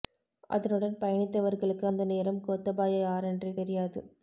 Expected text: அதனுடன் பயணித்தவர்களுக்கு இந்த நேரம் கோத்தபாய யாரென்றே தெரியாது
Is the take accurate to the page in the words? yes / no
no